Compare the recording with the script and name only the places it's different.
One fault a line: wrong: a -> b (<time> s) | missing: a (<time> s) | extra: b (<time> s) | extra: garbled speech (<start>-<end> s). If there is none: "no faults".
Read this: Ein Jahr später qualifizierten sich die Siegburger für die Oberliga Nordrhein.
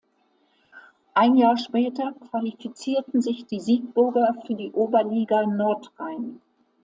no faults